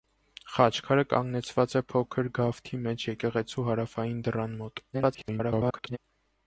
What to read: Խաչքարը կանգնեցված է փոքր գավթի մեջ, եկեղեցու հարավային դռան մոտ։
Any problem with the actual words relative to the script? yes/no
yes